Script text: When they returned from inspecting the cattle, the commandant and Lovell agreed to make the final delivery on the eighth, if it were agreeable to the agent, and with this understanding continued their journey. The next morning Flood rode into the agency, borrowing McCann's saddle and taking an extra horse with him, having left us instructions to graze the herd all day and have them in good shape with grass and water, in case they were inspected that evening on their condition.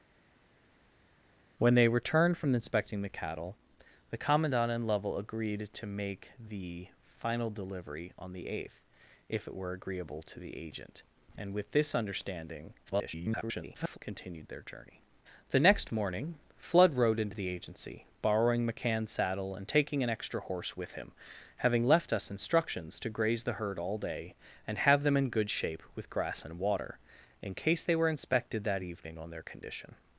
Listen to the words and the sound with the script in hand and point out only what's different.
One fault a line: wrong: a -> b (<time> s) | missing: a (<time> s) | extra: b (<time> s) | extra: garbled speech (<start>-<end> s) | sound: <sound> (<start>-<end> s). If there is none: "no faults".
extra: garbled speech (12.9-14.0 s)